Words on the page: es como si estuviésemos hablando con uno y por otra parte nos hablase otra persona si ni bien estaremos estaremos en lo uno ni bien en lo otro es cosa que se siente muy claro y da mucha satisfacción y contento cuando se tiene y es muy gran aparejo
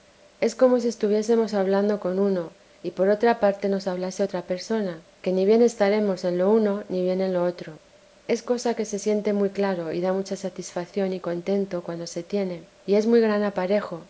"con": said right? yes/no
yes